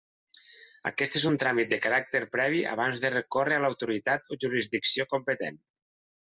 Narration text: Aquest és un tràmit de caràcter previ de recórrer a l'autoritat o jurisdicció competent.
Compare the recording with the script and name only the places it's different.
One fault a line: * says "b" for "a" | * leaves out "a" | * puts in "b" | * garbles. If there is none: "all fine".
* puts in "abans"